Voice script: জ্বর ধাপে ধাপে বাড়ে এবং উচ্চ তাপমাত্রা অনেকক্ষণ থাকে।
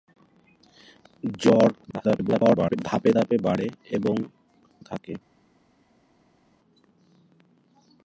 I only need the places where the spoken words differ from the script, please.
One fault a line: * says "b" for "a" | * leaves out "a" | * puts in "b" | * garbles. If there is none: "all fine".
* garbles
* leaves out "উচ্চ তাপমাত্রা অনেকক্ষণ"